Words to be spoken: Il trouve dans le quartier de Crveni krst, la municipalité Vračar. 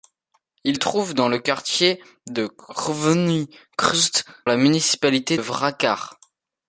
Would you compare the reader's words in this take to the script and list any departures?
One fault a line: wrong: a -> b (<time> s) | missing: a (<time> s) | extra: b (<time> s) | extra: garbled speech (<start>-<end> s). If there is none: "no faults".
no faults